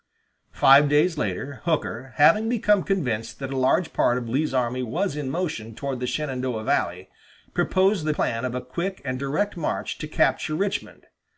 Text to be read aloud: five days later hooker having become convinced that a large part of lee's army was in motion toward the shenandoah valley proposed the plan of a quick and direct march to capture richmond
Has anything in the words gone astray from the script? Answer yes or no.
no